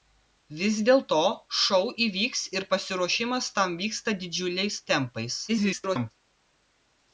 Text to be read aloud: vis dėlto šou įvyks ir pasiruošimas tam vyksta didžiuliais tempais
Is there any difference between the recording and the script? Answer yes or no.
yes